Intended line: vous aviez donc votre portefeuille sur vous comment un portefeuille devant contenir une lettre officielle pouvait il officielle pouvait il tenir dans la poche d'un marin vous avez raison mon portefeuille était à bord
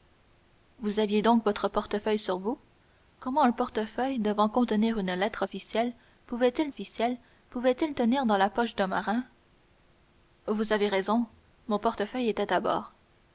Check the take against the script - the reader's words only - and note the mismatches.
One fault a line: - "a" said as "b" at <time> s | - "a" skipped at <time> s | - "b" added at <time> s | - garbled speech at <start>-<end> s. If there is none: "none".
none